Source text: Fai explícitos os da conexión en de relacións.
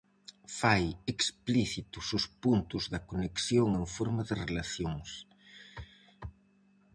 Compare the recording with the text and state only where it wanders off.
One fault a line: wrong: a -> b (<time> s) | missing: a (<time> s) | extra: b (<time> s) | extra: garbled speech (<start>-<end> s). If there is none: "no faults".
extra: puntos (2.4 s)
extra: forma (4.0 s)